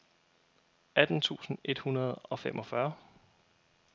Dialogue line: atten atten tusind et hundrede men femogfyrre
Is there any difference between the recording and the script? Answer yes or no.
yes